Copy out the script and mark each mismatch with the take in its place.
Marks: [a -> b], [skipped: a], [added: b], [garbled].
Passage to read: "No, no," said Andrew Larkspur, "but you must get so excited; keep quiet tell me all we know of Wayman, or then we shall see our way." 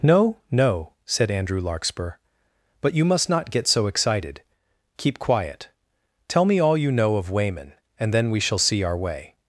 "No, no," said Andrew Larkspur, "but you must [added: not] get so excited; keep quiet tell me all [we -> you] know of Wayman, [or -> and] then we shall see our way."